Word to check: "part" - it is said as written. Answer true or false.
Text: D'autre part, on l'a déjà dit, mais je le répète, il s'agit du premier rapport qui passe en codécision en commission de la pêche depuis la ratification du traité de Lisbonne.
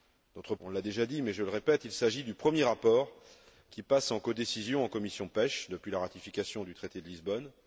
false